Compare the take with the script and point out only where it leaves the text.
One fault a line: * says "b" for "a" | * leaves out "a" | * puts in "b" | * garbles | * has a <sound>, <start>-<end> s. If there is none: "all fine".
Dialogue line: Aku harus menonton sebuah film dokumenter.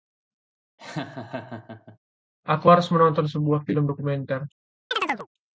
* has a laugh, 0.8-2.0 s
* has a chirp, 4.9-5.3 s